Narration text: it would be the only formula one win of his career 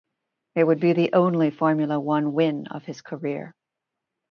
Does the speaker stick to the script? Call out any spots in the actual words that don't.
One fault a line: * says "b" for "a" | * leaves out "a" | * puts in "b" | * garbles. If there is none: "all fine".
all fine